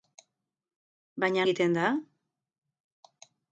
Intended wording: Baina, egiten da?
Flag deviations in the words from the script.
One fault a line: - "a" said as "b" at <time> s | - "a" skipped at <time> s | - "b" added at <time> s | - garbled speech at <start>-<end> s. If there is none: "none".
none